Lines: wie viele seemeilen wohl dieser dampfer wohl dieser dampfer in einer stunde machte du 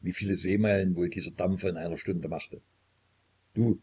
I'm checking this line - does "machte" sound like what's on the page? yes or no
yes